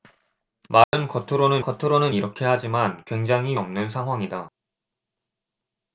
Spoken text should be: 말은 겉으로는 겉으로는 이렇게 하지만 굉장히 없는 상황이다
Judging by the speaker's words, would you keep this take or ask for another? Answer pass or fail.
pass